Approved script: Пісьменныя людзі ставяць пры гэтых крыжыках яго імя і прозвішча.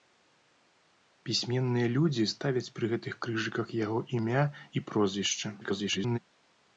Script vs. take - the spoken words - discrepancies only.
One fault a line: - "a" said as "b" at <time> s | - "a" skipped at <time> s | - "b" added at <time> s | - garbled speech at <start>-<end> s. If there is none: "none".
- garbled speech at 5.6-6.2 s